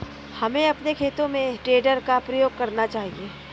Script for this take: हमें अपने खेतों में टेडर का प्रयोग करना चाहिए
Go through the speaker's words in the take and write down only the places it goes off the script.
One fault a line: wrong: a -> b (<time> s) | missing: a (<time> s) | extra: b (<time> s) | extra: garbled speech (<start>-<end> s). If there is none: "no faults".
no faults